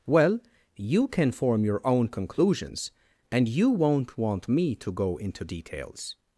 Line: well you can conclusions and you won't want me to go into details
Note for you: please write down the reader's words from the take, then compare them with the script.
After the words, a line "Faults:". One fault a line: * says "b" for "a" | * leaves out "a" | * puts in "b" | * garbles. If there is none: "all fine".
well you can form your own conclusions and you won't want me to go into details
Faults:
* puts in "form your own"